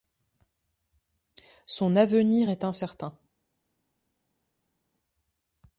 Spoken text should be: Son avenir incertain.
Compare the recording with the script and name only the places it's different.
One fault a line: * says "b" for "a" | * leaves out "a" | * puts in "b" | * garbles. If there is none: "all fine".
* puts in "est"